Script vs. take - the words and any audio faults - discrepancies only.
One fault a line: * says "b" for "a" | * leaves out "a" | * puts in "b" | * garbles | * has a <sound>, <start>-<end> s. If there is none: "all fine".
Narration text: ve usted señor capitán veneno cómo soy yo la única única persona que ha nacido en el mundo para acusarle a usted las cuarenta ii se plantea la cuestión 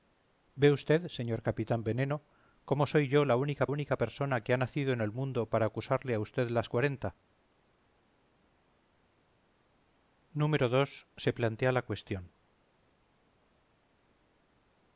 all fine